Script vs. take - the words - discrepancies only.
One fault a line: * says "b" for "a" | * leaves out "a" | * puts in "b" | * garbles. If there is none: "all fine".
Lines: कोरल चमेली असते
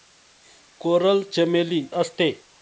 all fine